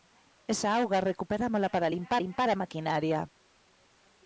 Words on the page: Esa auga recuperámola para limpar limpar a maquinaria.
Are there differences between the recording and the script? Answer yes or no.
no